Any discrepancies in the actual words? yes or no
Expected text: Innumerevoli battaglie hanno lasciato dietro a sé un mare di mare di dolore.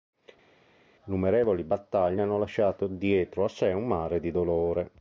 yes